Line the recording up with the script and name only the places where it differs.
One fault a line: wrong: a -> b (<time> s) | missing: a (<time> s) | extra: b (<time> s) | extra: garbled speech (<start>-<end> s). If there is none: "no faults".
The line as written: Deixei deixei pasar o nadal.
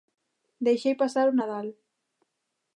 missing: deixei (0.9 s)